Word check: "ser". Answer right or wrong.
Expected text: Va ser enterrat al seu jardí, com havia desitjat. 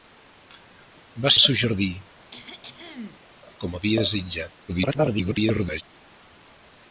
wrong